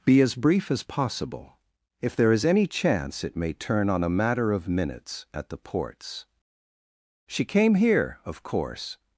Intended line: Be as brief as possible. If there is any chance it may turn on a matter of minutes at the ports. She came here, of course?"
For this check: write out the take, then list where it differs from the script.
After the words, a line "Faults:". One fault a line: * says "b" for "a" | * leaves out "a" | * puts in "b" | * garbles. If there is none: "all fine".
Be as brief as possible. If there is any chance it may turn on a matter of minutes at the ports. She came here, of course?"
Faults:
all fine